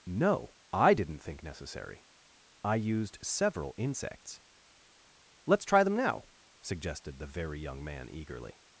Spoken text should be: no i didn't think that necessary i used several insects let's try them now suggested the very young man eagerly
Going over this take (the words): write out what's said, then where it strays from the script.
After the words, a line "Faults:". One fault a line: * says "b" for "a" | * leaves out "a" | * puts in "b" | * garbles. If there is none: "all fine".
no i didn't think necessary i used several insects let's try them now suggested the very young man eagerly
Faults:
* leaves out "that"